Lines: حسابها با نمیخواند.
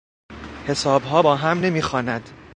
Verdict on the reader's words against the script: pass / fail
fail